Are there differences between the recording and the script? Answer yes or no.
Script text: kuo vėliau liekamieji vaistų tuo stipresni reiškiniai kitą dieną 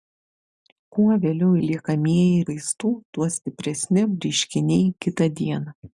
no